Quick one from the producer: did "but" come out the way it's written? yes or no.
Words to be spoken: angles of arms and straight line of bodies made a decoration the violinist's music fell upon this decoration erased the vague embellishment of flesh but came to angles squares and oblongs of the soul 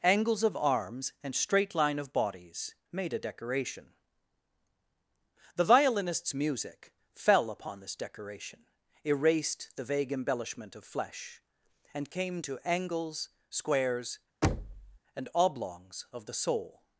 no